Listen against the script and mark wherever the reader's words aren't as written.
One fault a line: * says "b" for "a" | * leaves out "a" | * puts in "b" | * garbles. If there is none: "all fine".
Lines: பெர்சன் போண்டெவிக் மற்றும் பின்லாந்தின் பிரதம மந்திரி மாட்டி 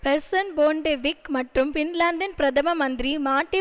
all fine